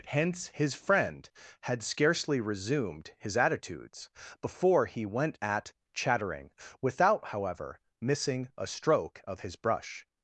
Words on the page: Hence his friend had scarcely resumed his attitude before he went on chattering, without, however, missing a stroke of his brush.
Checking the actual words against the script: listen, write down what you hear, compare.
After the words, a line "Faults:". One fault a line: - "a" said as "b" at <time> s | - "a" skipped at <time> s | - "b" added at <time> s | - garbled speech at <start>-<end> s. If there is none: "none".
Hence his friend had scarcely resumed his attitudes before he went at chattering, without, however, missing a stroke of his brush.
Faults:
- "attitude" said as "attitudes" at 3.4 s
- "on" said as "at" at 5.4 s